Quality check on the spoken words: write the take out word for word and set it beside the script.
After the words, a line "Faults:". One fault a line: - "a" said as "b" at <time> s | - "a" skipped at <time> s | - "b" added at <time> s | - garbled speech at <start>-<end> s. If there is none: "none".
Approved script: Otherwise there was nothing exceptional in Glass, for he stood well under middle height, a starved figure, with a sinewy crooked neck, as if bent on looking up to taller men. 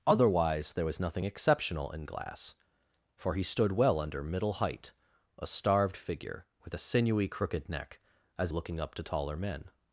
Otherwise there was nothing exceptional in Glass, for he stood well under middle height, a starved figure, with a sinewy crooked neck, as looking up to taller men.
Faults:
- "if bent on" skipped at 8.5 s